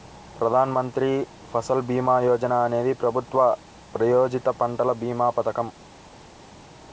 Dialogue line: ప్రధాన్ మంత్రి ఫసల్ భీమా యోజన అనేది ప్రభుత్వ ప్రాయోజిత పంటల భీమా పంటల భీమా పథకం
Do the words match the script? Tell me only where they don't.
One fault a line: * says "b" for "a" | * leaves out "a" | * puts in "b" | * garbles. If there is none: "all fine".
* leaves out "పంటల భీమా"